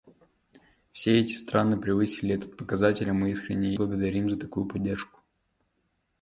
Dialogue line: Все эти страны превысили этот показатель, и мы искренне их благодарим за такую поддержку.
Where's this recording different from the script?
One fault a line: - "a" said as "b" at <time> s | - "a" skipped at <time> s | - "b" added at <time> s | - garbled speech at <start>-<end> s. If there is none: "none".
- "их" skipped at 3.8 s